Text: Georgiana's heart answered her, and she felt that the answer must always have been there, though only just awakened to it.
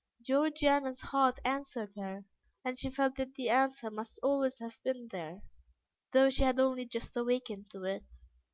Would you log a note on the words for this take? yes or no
yes